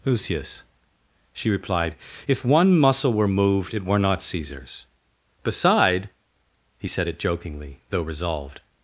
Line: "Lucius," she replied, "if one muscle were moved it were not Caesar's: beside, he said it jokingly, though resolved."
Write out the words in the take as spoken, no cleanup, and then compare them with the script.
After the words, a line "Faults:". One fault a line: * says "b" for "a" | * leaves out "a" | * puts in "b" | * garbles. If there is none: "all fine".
"Lucius," she replied, "if one muscle were moved it were not Caesar's: beside, he said it jokingly, though resolved."
Faults:
all fine